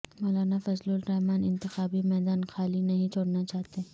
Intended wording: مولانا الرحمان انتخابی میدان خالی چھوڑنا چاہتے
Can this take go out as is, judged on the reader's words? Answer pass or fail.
fail